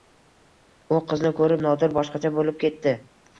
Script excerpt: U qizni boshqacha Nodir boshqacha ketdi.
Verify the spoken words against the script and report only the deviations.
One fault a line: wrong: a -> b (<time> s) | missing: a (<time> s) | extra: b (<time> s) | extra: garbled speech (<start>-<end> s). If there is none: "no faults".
wrong: boshqacha -> ko‘rib (1.4 s)
extra: bo‘lib (2.4 s)